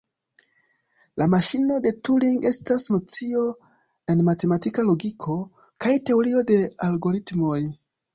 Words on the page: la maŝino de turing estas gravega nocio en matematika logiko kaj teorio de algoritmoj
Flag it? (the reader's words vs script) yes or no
yes